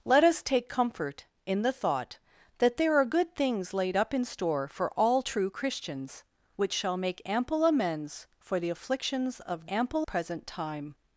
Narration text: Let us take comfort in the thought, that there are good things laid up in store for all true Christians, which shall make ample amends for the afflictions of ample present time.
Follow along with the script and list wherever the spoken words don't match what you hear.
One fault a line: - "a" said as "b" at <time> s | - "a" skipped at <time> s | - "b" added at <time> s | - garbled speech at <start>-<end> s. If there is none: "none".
none